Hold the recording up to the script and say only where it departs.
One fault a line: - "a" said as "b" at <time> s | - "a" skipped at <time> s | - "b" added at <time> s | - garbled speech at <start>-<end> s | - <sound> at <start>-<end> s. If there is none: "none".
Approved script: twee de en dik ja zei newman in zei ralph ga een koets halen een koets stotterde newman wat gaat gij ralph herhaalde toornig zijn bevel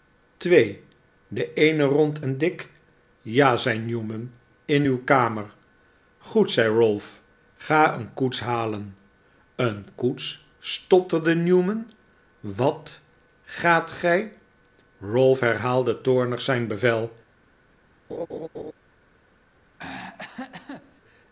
- "eene rond" added at 1.5 s
- "uw kamer goed" added at 4.8 s
- laugh at 18.1-18.7 s
- throat clearing at 19.8-21.0 s